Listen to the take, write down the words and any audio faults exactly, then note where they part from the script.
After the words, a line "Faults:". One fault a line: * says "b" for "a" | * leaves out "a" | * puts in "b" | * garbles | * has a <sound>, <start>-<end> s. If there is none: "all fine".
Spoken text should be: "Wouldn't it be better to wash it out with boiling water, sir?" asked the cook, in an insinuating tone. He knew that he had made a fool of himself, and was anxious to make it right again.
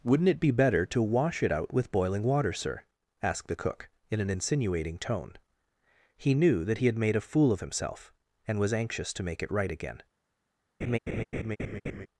"Wouldn't it be better to wash it out with boiling water, sir?" asked the cook, in an insinuating tone. He knew that he had made a fool of himself, and was anxious to make it right again.
Faults:
* has a laugh, 10.8-12.1 s